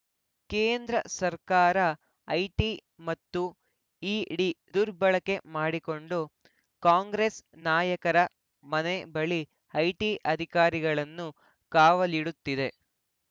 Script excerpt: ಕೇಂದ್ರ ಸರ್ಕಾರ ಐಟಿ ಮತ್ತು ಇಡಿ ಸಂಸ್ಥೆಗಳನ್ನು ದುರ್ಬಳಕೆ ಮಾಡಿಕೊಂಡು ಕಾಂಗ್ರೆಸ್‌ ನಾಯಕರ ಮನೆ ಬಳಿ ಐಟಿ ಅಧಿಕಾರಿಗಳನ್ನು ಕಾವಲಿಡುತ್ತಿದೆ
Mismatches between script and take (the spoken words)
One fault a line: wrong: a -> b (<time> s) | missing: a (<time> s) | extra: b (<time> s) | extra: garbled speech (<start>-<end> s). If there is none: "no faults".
missing: ಸಂಸ್ಥೆಗಳನ್ನು (4.5 s)